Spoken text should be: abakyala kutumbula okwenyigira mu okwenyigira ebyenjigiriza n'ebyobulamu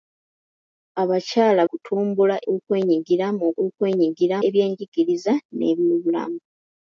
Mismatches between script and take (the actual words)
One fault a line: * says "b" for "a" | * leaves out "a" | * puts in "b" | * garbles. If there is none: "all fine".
all fine